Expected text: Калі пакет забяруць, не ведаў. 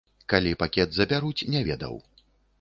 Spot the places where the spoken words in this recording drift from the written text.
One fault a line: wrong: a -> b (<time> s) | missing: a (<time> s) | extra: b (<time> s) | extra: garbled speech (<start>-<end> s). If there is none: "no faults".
no faults